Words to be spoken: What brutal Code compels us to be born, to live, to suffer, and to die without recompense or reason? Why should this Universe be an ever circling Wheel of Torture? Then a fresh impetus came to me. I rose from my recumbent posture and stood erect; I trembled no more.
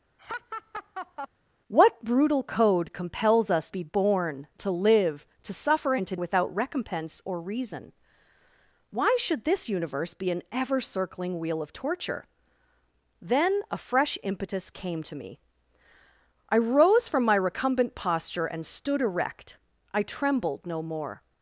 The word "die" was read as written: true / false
false